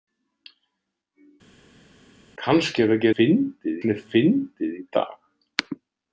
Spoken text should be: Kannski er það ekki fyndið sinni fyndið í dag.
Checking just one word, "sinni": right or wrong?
right